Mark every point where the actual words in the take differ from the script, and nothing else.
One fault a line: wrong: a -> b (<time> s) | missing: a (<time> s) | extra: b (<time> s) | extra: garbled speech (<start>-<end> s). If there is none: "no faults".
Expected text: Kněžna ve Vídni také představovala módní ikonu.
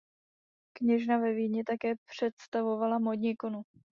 no faults